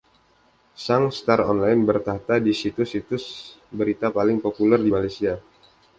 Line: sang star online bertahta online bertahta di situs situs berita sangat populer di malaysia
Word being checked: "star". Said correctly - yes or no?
yes